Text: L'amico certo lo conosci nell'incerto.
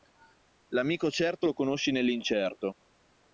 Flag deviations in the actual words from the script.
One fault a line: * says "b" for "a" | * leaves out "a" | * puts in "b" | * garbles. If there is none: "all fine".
all fine